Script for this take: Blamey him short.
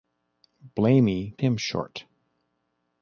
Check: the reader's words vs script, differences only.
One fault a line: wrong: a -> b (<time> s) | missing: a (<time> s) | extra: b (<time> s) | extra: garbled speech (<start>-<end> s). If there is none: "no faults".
no faults